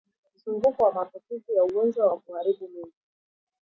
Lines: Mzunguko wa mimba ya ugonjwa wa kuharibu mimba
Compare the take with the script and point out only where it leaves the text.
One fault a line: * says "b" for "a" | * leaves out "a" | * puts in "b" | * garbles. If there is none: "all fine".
* says "maambukizi" for "mimba"